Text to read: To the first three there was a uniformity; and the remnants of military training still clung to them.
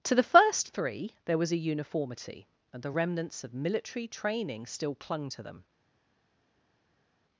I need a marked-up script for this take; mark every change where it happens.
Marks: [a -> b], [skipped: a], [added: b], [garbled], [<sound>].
To the first three there was a uniformity; and the remnants of military training still clung to them.